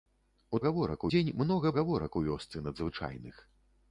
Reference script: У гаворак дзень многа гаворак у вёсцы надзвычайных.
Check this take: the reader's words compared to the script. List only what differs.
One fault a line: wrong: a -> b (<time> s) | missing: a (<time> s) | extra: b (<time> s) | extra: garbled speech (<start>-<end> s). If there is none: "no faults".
no faults